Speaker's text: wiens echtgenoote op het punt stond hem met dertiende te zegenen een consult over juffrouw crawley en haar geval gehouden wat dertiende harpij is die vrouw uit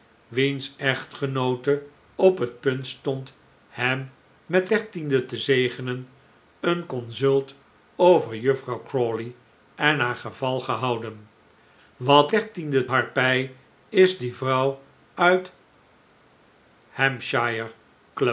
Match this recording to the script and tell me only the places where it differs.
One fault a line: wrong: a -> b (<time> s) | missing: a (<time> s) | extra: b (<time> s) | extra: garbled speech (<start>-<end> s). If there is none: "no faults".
no faults